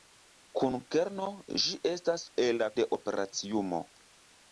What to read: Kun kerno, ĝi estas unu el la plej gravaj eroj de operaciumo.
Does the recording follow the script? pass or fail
fail